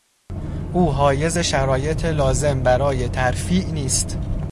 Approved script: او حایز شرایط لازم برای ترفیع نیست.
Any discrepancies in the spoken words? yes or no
no